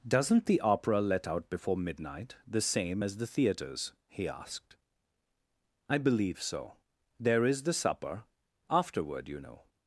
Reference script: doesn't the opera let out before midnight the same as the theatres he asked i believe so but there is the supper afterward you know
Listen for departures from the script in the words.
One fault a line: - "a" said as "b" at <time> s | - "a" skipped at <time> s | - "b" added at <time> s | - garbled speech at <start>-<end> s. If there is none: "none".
- "but" skipped at 6.7 s